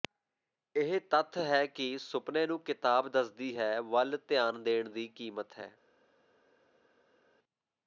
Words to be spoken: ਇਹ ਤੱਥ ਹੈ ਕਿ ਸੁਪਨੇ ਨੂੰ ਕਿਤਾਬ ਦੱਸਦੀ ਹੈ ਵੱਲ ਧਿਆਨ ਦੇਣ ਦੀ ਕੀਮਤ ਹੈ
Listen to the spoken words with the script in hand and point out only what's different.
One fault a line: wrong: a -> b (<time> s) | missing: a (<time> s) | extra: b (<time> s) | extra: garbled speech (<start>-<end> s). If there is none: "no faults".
no faults